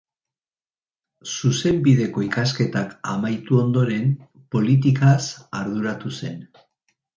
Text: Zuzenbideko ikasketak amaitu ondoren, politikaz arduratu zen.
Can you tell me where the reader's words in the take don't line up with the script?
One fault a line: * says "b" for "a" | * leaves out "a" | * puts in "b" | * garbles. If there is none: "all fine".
all fine